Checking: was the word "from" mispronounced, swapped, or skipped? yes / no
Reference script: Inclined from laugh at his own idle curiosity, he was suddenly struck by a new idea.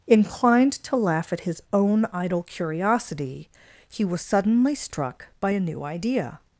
yes